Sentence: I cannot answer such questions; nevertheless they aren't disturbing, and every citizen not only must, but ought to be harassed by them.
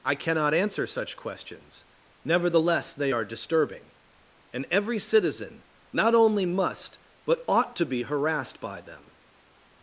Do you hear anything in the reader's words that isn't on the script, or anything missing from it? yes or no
yes